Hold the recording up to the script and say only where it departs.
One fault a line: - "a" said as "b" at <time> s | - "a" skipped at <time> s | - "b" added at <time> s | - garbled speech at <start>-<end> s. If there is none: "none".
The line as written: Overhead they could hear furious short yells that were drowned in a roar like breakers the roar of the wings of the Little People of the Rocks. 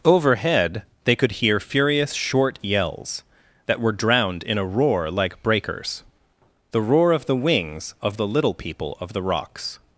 none